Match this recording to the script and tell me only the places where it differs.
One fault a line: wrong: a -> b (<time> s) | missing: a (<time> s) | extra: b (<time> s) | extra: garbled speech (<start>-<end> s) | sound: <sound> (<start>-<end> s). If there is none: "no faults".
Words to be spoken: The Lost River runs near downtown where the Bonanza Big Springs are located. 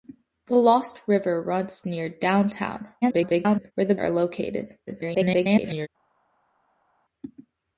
extra: garbled speech (3.0-3.7 s)
missing: Bonanza Big Springs (4.0 s)
extra: garbled speech (4.9-5.9 s)